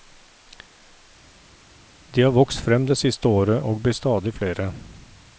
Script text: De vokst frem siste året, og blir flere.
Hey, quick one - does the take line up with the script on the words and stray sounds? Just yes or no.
no